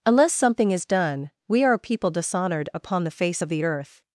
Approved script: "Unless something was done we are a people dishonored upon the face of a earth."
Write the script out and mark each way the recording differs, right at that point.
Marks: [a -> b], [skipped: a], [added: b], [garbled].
"Unless something [was -> is] done we are a people dishonored upon the face of [a -> the] earth."